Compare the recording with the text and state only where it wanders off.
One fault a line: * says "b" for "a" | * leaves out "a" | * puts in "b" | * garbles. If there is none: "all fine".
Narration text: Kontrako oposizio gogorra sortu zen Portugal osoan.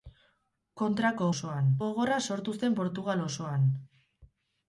* says "osoan" for "oposizio"